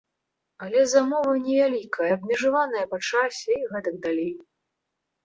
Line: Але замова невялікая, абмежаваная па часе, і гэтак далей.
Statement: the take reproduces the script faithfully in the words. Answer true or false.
true